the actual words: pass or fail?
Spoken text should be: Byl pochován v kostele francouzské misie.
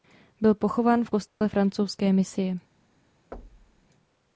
pass